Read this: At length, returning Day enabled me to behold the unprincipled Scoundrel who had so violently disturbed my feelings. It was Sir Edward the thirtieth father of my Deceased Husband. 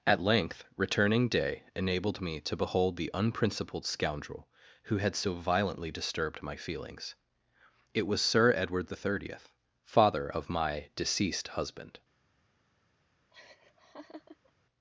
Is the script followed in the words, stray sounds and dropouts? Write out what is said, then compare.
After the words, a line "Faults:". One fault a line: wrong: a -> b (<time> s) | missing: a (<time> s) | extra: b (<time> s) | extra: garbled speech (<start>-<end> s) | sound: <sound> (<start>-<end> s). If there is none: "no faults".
At length, returning Day enabled me to behold the unprincipled Scoundrel who had so violently disturbed my feelings. It was Sir Edward the thirtieth father of my Deceased Husband.
Faults:
sound: laugh (13.3-14.5 s)